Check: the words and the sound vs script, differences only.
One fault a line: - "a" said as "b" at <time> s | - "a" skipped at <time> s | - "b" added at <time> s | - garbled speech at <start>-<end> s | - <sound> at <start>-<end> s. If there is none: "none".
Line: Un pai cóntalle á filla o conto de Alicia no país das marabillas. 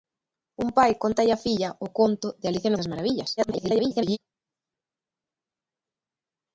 - "no país" skipped at 2.7 s
- garbled speech at 3.4-4.2 s